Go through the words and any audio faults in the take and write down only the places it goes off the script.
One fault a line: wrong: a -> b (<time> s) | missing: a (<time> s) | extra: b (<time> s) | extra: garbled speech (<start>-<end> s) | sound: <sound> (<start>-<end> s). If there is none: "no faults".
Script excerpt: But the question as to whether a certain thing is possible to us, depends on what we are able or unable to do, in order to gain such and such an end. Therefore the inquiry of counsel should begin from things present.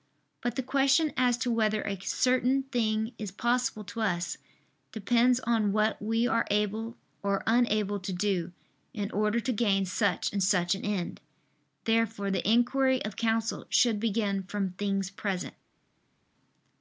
no faults